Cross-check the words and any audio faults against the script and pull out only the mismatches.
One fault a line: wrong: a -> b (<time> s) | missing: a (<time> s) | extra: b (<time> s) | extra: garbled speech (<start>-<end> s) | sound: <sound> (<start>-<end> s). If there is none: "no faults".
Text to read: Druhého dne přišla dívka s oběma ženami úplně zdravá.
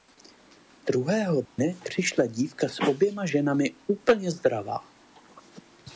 sound: dropout (1.5-1.6 s)